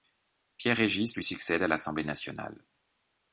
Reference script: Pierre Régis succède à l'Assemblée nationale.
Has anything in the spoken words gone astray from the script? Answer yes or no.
yes